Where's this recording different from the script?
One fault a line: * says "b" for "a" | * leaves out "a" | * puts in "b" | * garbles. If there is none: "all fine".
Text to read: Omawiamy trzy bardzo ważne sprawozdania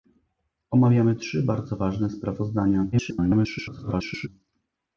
* garbles